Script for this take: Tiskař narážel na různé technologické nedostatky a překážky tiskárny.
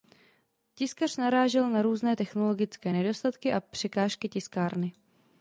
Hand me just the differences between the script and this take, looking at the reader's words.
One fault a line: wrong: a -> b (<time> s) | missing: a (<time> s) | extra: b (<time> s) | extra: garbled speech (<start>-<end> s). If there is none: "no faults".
no faults